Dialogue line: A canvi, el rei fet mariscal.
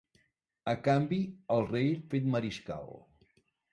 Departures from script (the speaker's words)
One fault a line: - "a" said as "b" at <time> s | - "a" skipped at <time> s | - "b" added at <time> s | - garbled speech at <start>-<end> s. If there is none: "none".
none